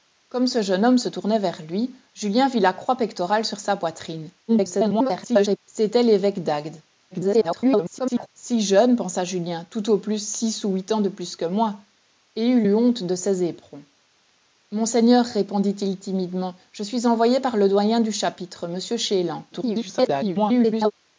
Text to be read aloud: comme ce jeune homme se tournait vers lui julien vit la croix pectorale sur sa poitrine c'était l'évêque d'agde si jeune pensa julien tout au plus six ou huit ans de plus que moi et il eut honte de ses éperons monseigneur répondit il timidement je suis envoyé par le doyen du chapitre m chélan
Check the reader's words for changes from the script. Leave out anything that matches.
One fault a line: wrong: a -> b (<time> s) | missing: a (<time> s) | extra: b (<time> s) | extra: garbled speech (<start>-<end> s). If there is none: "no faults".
extra: garbled speech (4.5-5.6 s)
extra: garbled speech (7.1-8.3 s)
extra: garbled speech (19.5-20.9 s)